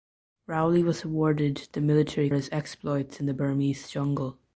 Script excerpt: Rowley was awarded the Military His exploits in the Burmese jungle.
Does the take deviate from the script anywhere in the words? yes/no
no